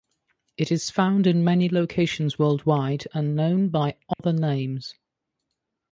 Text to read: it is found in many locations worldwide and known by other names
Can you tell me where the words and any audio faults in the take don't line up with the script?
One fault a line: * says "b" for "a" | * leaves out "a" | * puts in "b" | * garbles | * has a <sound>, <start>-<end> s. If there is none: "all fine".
* has a dropout, 4.1-4.2 s